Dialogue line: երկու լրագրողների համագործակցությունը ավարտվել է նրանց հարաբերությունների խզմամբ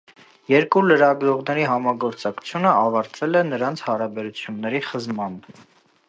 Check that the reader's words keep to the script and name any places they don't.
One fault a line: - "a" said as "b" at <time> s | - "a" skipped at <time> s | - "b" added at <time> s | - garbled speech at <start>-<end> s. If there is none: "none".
none